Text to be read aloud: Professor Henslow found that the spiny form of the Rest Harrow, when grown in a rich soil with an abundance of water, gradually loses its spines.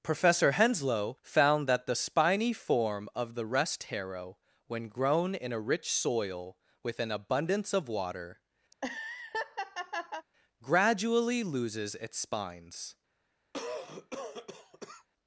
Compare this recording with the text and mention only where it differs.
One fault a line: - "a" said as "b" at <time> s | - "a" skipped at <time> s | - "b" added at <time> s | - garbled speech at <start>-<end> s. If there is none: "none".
none